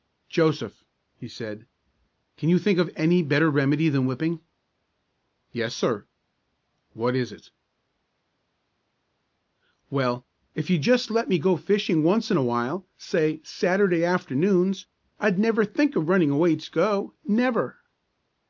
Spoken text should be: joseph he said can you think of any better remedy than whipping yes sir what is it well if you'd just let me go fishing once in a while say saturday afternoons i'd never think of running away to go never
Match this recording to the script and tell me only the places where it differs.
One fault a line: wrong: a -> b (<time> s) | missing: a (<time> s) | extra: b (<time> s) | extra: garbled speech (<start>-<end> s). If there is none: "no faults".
no faults